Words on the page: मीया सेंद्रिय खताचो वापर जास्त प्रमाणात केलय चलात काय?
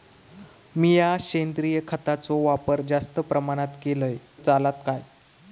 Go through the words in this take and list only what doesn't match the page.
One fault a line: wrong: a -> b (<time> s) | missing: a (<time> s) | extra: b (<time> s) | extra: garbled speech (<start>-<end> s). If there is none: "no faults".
no faults